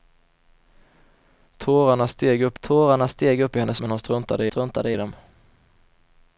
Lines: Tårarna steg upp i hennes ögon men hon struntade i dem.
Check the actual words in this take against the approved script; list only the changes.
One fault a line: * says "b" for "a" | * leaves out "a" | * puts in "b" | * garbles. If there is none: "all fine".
* puts in "tårarna steg upp"
* leaves out "ögon"
* puts in "struntade"